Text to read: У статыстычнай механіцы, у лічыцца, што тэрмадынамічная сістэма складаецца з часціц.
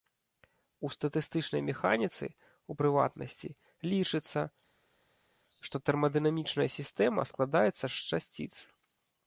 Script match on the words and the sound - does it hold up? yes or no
no